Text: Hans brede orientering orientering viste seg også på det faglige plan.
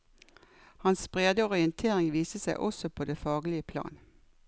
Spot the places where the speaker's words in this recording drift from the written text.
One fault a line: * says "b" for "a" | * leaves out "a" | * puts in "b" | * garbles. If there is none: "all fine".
* leaves out "orientering"